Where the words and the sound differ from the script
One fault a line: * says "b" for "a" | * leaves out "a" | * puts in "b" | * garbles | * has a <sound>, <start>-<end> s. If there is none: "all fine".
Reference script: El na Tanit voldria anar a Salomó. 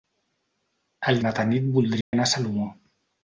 * has a dropout, 2.0-2.1 s